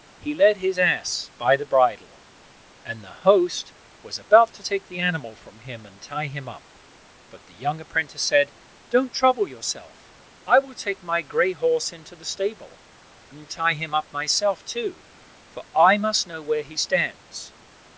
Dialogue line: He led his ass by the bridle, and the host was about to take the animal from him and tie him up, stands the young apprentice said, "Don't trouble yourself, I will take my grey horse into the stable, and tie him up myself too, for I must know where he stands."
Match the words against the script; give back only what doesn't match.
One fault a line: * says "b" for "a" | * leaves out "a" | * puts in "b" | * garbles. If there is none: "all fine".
* says "but" for "stands"